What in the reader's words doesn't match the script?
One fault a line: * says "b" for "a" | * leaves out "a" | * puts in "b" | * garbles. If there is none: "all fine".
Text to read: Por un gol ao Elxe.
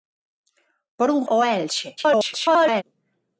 * leaves out "gol"
* garbles